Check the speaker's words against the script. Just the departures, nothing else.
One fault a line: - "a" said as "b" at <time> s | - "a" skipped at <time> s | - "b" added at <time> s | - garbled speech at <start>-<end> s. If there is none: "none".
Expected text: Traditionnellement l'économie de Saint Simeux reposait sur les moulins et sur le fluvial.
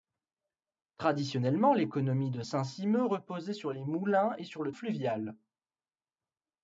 none